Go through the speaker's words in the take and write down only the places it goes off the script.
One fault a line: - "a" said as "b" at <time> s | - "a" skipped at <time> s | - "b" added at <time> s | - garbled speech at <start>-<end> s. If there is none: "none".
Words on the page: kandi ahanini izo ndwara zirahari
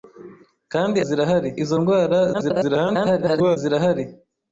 - "ahanini" said as "zirahari" at 1.1 s
- garbled speech at 2.3-3.6 s